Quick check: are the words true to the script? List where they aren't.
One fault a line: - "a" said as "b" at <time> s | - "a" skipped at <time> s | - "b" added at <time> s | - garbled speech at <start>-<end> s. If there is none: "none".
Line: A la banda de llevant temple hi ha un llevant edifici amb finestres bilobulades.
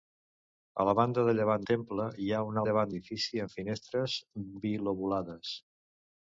none